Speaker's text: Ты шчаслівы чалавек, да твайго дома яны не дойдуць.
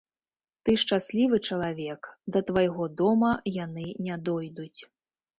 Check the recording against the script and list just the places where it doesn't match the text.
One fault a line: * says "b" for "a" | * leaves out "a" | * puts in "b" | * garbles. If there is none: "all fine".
all fine